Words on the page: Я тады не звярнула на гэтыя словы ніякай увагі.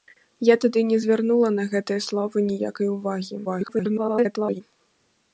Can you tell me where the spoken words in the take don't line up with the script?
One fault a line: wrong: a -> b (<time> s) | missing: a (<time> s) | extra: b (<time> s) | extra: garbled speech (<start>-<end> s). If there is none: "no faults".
extra: garbled speech (3.4-4.6 s)